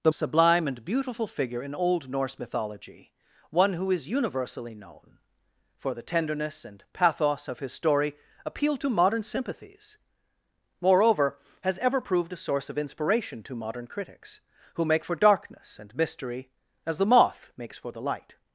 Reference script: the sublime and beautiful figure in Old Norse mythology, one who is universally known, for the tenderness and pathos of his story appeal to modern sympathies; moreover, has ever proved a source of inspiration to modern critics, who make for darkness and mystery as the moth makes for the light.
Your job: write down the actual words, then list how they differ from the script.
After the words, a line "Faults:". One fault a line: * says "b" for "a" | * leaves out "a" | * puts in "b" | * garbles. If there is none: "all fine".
the sublime and beautiful figure in Old Norse mythology, one who is universally known, for the tenderness and pathos of his story appeal to modern sympathies; moreover, has ever proved a source of inspiration to modern critics, who make for darkness and mystery as the moth makes for the light.
Faults:
all fine